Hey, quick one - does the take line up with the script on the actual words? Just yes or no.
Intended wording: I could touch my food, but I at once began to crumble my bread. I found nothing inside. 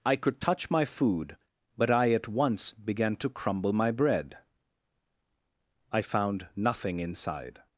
yes